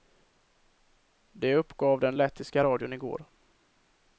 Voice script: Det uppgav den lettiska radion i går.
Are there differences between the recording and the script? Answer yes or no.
no